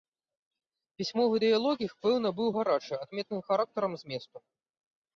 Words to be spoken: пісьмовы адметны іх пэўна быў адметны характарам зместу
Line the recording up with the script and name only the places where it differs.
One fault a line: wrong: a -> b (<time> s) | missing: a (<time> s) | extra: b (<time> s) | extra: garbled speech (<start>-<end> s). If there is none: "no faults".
wrong: адметны -> дыялог (1.5 s)
extra: гарачы (2.6 s)